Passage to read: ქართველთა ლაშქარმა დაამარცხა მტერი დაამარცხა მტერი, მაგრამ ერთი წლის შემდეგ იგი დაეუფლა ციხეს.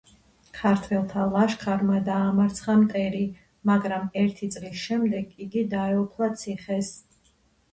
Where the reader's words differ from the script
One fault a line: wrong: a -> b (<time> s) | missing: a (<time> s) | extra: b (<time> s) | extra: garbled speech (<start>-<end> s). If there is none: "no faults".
missing: დაამარცხა მტერი (3.2 s)